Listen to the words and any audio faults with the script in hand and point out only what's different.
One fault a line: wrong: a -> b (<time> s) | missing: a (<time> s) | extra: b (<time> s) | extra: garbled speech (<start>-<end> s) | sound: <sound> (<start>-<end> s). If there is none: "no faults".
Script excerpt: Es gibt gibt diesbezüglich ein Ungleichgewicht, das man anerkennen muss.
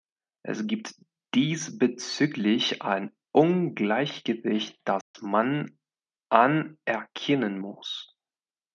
missing: gibt (0.9 s)
sound: dropout (5.0-5.1 s)